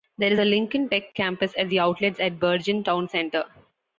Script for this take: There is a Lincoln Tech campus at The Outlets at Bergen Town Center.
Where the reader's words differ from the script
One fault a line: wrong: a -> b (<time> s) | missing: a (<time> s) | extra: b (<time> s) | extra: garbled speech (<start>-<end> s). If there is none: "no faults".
no faults